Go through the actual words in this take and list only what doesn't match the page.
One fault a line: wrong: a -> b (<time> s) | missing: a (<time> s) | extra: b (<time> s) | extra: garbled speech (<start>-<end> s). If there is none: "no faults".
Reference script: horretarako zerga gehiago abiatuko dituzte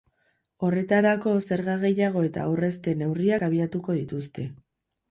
extra: eta aurrezte neurriak (2.3 s)